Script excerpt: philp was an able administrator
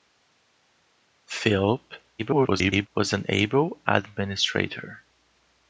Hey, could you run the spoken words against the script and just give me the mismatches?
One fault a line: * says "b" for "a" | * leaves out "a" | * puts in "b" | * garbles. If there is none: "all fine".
* garbles